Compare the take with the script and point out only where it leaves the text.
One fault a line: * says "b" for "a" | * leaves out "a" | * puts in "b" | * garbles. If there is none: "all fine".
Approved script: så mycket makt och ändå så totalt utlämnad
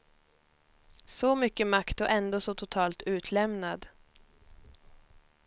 all fine